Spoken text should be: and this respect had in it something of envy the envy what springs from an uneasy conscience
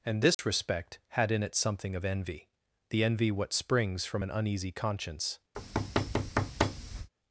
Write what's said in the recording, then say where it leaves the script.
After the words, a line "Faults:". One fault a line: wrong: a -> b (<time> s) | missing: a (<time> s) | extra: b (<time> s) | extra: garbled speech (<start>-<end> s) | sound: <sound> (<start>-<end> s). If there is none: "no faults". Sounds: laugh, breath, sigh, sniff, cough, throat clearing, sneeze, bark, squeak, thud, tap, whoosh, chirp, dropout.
and this respect had in it something of envy the envy what springs from an uneasy conscience
Faults:
sound: dropout (0.3-0.4 s)
sound: thud (5.5-7.1 s)